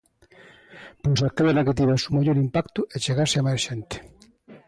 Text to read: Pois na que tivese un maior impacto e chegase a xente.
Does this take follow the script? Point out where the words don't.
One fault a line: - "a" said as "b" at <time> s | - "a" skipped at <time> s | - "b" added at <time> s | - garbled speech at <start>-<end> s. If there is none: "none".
- "aquela" added at 1.2 s
- "máis" added at 3.5 s